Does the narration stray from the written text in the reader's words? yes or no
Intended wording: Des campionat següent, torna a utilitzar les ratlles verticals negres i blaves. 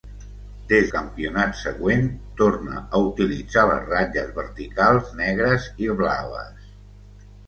no